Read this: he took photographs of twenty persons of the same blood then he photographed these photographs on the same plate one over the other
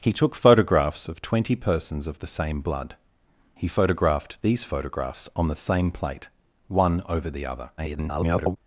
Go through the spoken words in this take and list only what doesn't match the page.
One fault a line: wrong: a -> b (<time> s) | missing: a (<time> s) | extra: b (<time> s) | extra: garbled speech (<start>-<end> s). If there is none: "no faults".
missing: then (3.0 s)
extra: garbled speech (7.8-8.6 s)